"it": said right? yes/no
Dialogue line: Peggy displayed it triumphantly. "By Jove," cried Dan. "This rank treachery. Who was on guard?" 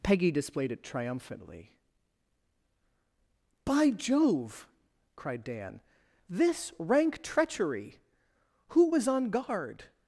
yes